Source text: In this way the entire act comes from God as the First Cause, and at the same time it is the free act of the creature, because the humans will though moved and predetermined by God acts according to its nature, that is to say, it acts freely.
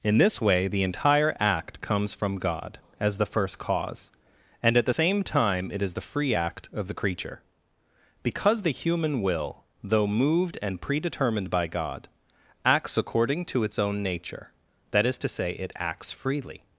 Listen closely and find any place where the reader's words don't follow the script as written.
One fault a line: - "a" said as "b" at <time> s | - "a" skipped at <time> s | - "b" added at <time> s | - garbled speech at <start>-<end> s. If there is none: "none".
- "humans" said as "human" at 8.7 s
- "own" added at 13.8 s